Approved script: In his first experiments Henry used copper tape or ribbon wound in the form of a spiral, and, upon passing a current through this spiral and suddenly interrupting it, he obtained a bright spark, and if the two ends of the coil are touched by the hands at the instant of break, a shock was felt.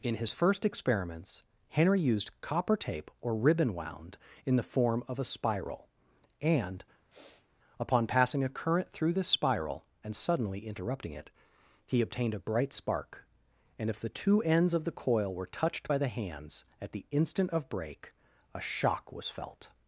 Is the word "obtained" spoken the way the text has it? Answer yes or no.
yes